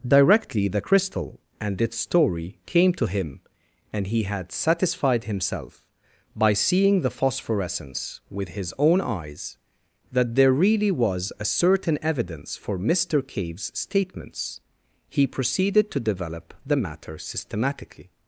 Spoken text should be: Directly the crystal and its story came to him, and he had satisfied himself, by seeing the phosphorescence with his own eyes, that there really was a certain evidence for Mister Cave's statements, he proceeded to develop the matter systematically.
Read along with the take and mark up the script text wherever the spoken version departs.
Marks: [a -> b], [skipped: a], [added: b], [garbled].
Directly the crystal and its story came to him, and he had satisfied himself, by seeing the phosphorescence with his own eyes, that there really was a certain evidence for Mister Cave's statements, he proceeded to develop the matter systematically.